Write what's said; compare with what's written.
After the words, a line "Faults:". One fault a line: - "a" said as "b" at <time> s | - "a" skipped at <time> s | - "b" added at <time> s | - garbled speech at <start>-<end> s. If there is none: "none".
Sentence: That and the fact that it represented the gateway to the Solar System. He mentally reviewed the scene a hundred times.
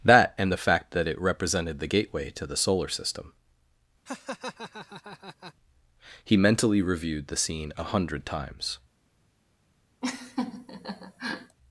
That and the fact that it represented the gateway to the Solar System. He mentally reviewed the scene a hundred times.
Faults:
none